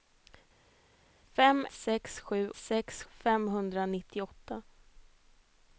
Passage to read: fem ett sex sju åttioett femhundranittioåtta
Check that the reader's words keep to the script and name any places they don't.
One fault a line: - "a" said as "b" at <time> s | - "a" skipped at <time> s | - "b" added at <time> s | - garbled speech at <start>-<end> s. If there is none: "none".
- "ett" skipped at 1.7 s
- "åttioett" said as "sex" at 2.5 s